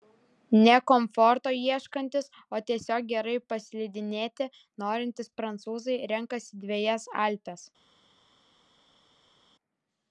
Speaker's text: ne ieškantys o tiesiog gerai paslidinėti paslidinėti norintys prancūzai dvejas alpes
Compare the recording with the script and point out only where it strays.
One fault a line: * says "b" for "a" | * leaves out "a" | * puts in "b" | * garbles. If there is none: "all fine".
* puts in "komforto"
* leaves out "paslidinėti"
* puts in "renkasi"